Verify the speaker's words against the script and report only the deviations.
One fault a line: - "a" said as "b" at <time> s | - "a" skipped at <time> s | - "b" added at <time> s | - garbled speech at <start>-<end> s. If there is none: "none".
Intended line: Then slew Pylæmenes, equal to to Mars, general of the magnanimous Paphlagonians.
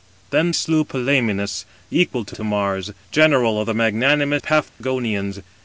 none